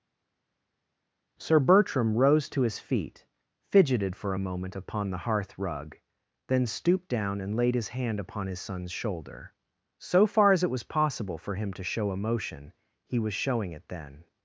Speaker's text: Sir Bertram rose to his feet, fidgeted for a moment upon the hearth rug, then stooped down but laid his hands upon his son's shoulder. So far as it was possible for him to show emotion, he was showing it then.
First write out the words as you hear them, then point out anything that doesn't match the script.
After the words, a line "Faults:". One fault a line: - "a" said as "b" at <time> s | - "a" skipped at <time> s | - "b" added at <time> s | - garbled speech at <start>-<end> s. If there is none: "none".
Sir Bertram rose to his feet, fidgeted for a moment upon the hearth rug, then stooped down and laid his hand upon his son's shoulder. So far as it was possible for him to show emotion, he was showing it then.
Faults:
- "but" said as "and" at 7.4 s
- "hands" said as "hand" at 7.9 s